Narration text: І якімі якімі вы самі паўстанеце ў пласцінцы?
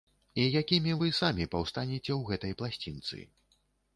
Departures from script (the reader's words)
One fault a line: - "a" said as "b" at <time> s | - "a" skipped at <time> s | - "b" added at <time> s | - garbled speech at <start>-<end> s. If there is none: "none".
- "якімі" skipped at 0.9 s
- "гэтай" added at 2.3 s